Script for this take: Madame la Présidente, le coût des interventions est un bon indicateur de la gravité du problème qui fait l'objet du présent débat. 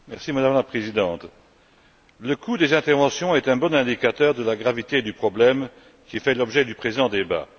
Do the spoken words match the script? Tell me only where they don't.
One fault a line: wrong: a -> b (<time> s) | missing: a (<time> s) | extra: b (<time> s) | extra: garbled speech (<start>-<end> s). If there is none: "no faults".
no faults